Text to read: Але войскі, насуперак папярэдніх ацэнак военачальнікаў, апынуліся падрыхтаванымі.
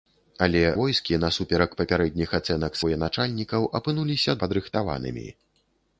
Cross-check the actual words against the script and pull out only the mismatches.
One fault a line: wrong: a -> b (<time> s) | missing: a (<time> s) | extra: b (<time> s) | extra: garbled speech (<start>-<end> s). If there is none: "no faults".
no faults